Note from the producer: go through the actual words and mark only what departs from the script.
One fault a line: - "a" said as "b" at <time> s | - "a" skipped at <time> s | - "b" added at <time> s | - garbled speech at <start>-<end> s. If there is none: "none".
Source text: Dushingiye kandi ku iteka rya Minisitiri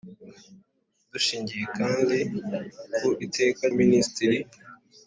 - "rya" skipped at 3.6 s